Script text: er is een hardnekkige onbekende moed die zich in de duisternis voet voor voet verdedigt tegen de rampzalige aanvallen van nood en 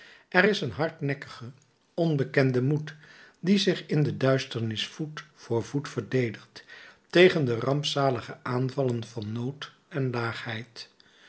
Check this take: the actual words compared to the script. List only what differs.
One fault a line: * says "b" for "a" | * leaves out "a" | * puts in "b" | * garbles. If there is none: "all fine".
all fine